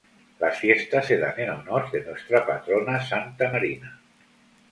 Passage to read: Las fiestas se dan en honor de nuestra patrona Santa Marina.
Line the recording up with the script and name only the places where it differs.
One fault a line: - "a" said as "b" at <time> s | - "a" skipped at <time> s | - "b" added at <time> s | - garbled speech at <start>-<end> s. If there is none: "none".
none